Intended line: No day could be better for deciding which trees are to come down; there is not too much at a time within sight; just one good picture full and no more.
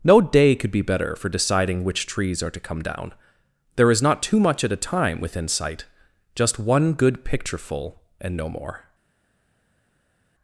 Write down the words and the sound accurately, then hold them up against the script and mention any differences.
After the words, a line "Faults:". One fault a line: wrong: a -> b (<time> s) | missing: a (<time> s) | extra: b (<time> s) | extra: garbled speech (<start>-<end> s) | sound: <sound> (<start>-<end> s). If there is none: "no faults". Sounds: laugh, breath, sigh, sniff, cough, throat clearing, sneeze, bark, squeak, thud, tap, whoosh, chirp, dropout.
No day could be better for deciding which trees are to come down; there is not too much at a time within sight; just one good picture full and no more.
Faults:
no faults